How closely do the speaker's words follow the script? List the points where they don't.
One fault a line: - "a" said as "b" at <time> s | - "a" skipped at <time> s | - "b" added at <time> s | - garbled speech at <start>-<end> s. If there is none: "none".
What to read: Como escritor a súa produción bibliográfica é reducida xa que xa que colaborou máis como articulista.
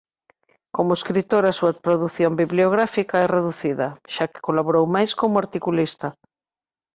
- "xa que" skipped at 4.4 s